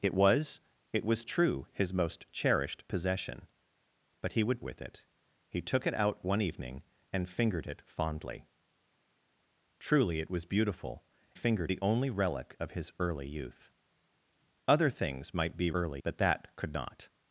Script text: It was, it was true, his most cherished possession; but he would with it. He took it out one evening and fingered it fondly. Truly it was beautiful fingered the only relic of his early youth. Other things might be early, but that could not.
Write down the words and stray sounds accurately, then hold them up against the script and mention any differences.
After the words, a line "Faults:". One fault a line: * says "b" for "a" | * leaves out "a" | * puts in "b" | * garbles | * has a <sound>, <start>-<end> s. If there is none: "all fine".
It was, it was true, his most cherished possession; but he would with it. He took it out one evening and fingered it fondly. Truly it was beautiful fingered the only relic of his early youth. Other things might be early, but that could not.
Faults:
all fine